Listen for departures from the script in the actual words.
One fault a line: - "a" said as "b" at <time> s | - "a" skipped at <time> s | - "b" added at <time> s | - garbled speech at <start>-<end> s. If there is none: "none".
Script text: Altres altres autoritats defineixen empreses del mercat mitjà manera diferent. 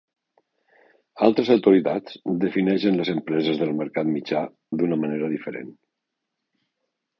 - "altres" skipped at 1.5 s
- "les" added at 3.0 s
- "d'una" added at 4.8 s